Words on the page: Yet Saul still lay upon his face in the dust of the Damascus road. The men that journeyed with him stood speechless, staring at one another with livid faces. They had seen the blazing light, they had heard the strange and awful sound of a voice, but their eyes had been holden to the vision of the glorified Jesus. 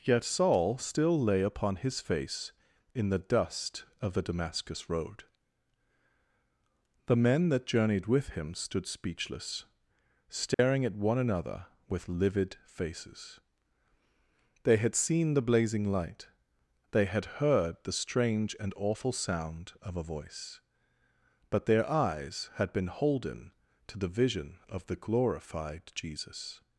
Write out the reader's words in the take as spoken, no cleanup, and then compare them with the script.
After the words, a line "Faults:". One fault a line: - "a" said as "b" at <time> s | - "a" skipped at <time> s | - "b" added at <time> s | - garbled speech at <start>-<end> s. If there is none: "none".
Yet Saul still lay upon his face in the dust of the Damascus road. The men that journeyed with him stood speechless, staring at one another with livid faces. They had seen the blazing light, they had heard the strange and awful sound of a voice, but their eyes had been holden to the vision of the glorified Jesus.
Faults:
none